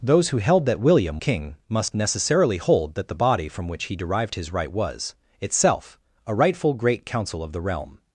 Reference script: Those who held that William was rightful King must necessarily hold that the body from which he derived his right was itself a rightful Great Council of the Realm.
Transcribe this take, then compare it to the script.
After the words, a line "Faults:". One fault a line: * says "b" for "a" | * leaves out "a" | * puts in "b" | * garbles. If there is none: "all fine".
Those who held that William King must necessarily hold that the body from which he derived his right was itself a rightful Great Council of the Realm.
Faults:
* leaves out "was rightful"